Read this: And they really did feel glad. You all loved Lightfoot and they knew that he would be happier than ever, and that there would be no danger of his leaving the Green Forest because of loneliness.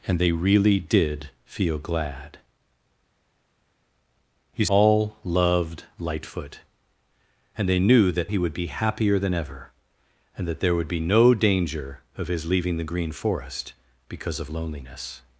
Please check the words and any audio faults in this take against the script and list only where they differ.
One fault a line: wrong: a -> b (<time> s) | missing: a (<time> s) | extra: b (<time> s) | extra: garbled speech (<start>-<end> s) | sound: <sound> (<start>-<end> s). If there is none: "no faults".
no faults